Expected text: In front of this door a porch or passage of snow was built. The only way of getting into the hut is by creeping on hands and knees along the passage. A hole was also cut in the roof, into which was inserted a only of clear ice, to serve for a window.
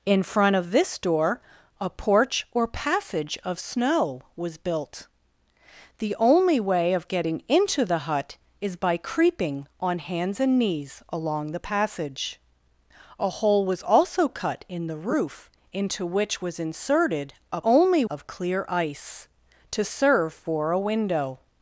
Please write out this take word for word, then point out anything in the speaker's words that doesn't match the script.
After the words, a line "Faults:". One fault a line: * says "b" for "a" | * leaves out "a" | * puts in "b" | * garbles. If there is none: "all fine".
In front of this door a porch or passage of snow was built. The only way of getting into the hut is by creeping on hands and knees along the passage. A hole was also cut in the roof, into which was inserted a only of clear ice, to serve for a window.
Faults:
all fine